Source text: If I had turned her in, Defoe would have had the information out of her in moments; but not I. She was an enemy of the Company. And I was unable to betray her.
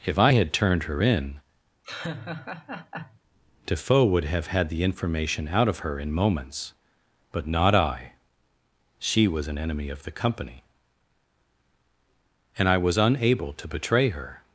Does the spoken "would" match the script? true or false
true